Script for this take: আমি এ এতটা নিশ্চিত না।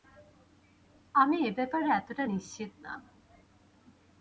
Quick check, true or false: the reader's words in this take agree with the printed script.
false